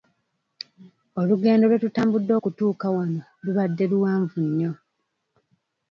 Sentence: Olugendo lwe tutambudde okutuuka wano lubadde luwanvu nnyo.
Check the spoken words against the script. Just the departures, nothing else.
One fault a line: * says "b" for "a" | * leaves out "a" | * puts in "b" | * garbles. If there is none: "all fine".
all fine